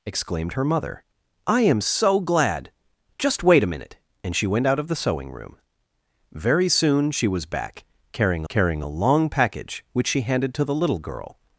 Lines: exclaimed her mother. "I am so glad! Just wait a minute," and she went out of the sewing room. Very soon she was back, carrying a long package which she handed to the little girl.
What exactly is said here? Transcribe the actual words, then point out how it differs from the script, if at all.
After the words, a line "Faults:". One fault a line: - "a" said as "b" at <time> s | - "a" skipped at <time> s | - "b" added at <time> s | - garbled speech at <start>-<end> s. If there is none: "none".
exclaimed her mother. "I am so glad! Just wait a minute," and she went out of the sewing room. Very soon she was back, carrying carrying a long package which she handed to the little girl.
Faults:
- "carrying" added at 8.5 s